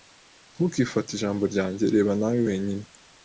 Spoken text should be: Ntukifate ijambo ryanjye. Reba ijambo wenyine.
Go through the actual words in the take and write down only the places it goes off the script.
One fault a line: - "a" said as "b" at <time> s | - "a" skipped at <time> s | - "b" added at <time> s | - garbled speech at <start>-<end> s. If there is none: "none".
- "ijambo" said as "nawe" at 2.2 s